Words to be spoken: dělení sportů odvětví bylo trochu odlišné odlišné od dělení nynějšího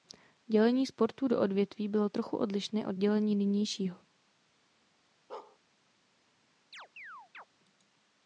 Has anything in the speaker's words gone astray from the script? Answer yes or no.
yes